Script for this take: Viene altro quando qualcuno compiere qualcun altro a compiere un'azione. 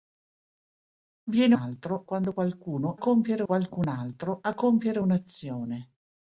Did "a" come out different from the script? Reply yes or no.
no